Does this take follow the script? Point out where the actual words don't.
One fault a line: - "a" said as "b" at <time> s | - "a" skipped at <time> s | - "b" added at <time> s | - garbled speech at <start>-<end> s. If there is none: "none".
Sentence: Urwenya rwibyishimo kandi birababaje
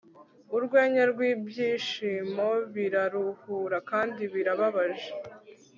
- "biraruhura" added at 2.7 s